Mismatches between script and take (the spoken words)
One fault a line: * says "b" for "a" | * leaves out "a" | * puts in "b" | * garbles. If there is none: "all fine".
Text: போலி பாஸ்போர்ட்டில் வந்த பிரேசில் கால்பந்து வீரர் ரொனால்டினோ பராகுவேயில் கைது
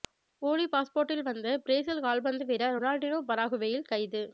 all fine